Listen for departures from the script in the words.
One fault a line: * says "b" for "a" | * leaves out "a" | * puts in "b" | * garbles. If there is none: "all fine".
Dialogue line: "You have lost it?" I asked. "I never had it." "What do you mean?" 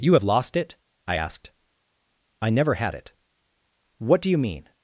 all fine